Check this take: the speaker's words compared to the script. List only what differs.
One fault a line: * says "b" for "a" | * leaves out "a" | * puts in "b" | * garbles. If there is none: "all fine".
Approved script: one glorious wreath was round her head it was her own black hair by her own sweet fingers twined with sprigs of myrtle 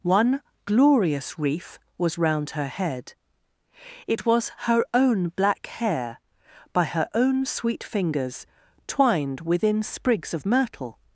* says "within" for "with"